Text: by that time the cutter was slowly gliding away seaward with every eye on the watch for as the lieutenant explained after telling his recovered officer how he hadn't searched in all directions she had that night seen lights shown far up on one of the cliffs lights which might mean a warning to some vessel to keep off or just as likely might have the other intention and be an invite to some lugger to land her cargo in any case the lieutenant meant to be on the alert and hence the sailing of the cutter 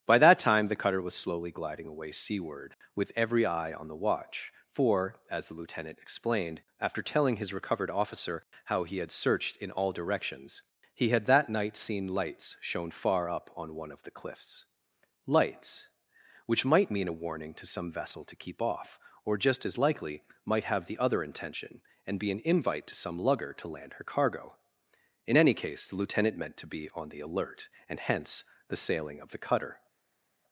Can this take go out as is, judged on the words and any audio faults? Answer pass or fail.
fail